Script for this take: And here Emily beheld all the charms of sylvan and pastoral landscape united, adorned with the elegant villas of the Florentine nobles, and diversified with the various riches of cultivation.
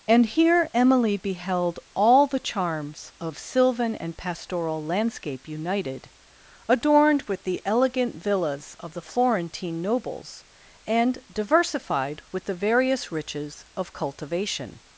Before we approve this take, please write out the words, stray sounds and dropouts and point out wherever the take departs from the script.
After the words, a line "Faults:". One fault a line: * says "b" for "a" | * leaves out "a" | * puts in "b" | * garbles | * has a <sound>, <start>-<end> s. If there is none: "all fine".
And here Emily beheld all the charms of sylvan and pastoral landscape united, adorned with the elegant villas of the Florentine nobles, and diversified with the various riches of cultivation.
Faults:
all fine